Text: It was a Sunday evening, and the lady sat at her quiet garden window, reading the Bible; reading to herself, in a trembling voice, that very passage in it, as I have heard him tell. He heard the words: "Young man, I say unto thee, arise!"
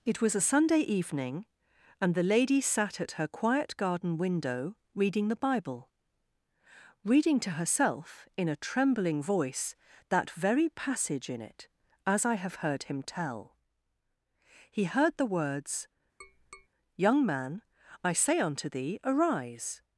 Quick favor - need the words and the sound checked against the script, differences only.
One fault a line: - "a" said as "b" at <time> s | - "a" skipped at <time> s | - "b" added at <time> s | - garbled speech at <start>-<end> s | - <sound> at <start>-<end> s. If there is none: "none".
- tap at 16.2-16.7 s